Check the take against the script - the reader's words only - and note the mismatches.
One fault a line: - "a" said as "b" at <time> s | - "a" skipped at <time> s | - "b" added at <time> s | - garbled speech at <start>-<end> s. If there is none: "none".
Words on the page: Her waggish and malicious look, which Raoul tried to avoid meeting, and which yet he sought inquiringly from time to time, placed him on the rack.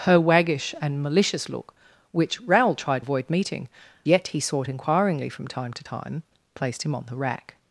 - "to" skipped at 3.0 s
- "and which" skipped at 3.7 s